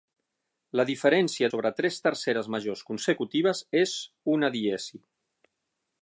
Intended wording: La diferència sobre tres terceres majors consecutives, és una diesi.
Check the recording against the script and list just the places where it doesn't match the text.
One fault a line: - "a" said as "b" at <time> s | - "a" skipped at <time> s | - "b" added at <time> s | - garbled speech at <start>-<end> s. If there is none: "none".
none